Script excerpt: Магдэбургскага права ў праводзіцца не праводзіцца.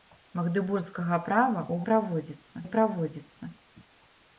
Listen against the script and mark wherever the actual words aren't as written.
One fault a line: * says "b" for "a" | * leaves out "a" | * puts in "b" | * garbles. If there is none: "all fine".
all fine